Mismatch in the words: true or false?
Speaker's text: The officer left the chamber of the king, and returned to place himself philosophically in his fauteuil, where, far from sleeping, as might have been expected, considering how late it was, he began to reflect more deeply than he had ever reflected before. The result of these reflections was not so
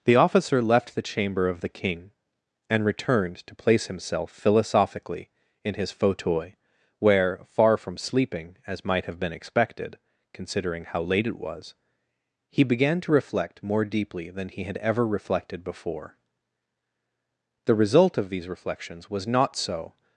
false